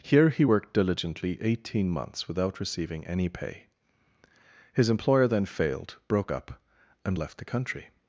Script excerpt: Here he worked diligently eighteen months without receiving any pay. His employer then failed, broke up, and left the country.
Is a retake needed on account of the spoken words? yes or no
no